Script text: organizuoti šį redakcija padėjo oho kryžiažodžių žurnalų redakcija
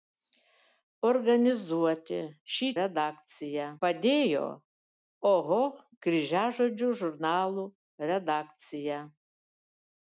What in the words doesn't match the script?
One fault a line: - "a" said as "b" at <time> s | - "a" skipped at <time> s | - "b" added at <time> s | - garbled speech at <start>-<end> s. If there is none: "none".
none